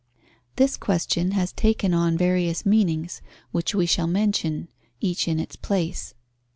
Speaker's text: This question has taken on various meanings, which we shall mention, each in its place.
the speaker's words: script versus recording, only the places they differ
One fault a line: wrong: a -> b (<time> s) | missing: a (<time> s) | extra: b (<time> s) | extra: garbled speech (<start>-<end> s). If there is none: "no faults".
no faults